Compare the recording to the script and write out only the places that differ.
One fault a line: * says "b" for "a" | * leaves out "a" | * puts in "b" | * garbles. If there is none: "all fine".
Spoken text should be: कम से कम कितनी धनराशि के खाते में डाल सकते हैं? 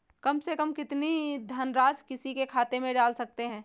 * puts in "किसी"